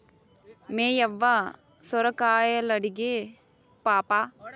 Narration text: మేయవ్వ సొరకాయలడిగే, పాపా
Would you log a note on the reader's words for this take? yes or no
no